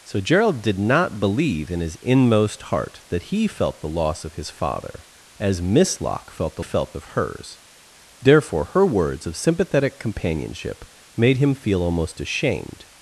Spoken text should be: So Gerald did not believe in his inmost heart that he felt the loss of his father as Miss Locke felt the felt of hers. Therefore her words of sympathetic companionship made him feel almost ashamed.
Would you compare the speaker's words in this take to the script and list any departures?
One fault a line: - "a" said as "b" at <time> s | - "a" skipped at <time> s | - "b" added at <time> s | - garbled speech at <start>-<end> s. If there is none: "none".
none